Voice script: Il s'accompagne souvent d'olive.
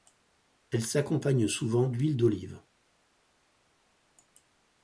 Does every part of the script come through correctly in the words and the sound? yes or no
no